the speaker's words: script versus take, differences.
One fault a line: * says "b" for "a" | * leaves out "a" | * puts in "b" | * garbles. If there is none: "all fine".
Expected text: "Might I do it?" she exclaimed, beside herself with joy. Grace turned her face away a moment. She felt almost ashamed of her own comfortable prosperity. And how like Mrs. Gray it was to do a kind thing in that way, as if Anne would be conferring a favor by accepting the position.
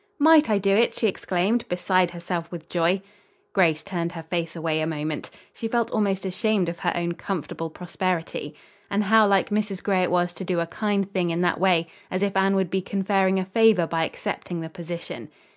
all fine